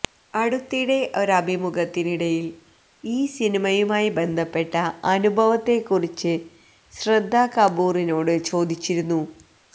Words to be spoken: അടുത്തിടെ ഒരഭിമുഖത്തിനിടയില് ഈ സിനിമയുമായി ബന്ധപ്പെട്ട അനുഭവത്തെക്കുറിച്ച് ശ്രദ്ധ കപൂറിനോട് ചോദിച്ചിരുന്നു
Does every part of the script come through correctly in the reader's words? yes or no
yes